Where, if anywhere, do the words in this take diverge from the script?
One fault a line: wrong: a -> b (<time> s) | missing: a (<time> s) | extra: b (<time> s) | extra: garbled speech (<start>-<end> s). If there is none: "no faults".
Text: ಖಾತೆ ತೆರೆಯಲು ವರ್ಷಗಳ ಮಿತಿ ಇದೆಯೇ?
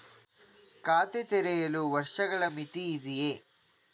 no faults